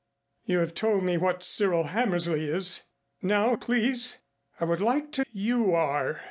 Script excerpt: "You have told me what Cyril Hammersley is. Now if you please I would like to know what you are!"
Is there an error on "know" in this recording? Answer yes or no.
yes